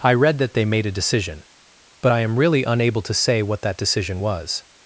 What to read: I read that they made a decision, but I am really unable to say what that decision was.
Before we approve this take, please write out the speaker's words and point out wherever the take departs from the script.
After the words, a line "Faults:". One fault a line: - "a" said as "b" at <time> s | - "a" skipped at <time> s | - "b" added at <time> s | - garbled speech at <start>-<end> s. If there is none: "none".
I read that they made a decision, but I am really unable to say what that decision was.
Faults:
none